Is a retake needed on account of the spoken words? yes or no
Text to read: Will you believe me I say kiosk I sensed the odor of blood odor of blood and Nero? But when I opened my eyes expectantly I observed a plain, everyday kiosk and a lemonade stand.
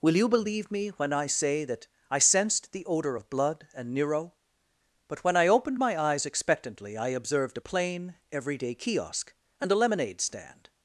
yes